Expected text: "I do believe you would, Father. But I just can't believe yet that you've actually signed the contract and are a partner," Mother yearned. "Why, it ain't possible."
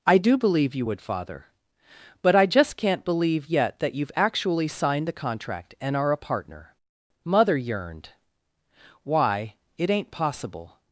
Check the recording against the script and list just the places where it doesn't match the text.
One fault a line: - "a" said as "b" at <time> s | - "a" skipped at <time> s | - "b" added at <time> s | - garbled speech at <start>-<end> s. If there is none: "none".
none